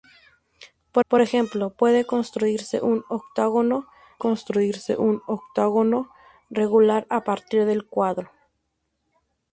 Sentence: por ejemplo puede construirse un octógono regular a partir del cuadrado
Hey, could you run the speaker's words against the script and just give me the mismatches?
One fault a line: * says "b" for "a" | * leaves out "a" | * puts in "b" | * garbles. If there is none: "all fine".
* puts in "por"
* puts in "construirse un octógono"